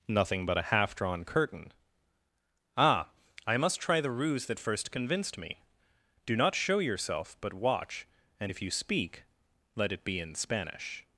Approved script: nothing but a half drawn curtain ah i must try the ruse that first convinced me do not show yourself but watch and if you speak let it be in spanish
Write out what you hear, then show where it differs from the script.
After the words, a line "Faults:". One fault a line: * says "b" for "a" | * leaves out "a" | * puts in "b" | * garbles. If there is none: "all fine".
nothing but a half drawn curtain ah i must try the ruse that first convinced me do not show yourself but watch and if you speak let it be in spanish
Faults:
all fine